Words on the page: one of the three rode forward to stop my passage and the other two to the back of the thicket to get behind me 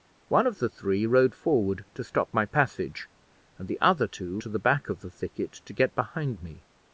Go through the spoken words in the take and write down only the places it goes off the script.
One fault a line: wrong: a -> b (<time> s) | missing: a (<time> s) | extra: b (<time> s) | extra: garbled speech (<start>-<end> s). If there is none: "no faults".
no faults